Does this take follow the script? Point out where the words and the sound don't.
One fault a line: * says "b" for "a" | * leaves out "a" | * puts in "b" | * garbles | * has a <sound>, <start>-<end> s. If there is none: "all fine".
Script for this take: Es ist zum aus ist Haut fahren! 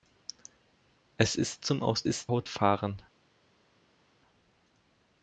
all fine